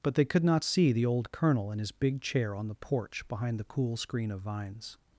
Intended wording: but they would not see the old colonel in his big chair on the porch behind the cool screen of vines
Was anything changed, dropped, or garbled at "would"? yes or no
yes